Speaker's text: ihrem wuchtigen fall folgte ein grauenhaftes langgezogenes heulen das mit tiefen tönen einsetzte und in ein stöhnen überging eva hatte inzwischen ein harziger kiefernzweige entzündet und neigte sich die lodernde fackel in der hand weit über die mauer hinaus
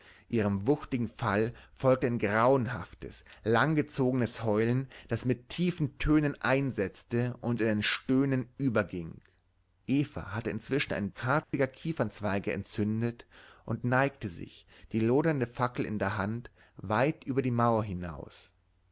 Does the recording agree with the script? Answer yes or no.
yes